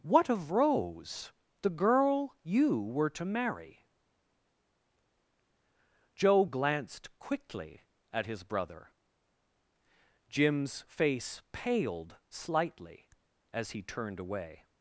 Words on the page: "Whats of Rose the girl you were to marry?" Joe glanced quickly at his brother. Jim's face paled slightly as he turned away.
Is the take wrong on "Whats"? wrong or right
wrong